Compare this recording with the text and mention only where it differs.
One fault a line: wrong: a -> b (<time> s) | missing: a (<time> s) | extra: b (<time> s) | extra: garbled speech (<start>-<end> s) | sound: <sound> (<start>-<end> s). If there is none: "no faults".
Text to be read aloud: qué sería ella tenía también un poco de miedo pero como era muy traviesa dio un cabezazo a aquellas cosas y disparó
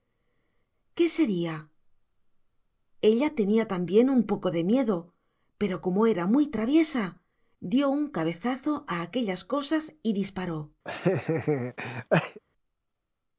sound: laugh (10.8-12.4 s)